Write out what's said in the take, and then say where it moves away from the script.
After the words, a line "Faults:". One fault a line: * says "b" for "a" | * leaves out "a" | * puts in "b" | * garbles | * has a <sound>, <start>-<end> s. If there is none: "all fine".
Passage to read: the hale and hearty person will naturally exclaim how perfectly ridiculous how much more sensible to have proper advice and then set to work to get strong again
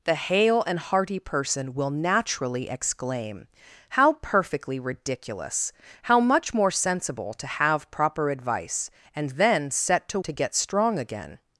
the hale and hearty person will naturally exclaim how perfectly ridiculous how much more sensible to have proper advice and then set to to get strong again
Faults:
* leaves out "work"